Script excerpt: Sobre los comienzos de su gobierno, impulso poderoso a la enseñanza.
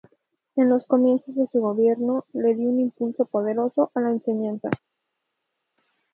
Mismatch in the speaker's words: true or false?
true